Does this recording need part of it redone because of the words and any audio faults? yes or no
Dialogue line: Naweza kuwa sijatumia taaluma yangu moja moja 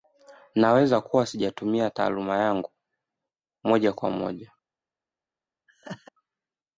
yes